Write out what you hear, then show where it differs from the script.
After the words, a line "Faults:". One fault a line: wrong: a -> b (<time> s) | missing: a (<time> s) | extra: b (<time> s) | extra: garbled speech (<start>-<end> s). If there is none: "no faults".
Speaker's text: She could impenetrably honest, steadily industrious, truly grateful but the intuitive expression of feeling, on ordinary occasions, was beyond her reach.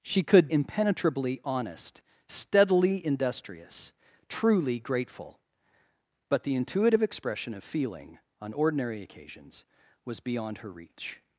She could impenetrably honest, steadily industrious, truly grateful but the intuitive expression of feeling, on ordinary occasions, was beyond her reach.
Faults:
no faults